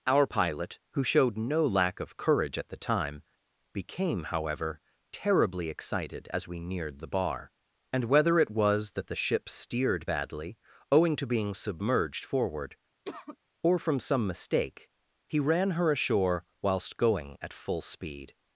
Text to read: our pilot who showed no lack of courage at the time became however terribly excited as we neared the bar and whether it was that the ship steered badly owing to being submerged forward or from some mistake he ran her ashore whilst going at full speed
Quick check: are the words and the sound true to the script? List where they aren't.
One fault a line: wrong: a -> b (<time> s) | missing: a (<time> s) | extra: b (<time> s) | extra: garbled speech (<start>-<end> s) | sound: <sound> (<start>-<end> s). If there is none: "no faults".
sound: cough (13.0-13.4 s)